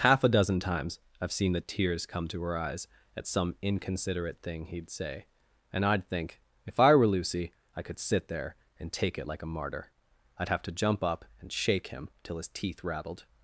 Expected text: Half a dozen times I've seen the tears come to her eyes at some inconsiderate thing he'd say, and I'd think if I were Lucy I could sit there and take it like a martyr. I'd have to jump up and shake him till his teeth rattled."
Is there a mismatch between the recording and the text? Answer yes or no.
no